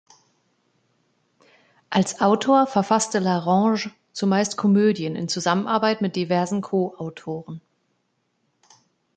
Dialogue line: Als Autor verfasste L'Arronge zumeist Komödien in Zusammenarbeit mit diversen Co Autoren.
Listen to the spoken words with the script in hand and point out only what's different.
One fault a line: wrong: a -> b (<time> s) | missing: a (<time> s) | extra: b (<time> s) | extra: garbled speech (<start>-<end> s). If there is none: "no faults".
no faults